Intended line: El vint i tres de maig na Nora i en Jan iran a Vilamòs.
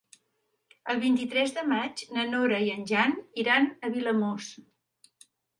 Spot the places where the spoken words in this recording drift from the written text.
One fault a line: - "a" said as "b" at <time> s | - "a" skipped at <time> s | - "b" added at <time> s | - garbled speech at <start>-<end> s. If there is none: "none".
none